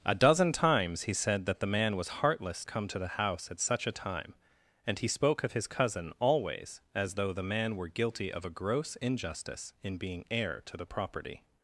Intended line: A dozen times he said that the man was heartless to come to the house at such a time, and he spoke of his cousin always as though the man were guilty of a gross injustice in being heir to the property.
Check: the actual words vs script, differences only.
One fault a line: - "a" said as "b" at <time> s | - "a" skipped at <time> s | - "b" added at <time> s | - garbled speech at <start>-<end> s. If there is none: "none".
- "to" skipped at 2.6 s